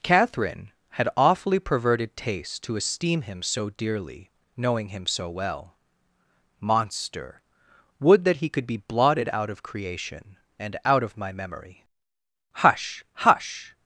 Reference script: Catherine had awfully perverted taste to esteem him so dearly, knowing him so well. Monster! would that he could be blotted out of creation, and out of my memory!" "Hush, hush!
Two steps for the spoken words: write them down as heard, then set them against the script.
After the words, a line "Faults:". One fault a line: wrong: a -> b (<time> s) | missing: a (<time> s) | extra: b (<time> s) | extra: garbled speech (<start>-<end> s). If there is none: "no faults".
Catherine had awfully perverted taste to esteem him so dearly, knowing him so well. Monster! would that he could be blotted out of creation, and out of my memory!" "Hush, hush!
Faults:
no faults